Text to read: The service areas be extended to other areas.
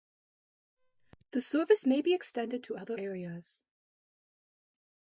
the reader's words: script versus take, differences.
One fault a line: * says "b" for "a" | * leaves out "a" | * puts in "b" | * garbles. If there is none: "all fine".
* says "may" for "areas"